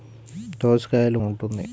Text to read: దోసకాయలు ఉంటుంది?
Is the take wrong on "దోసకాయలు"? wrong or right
right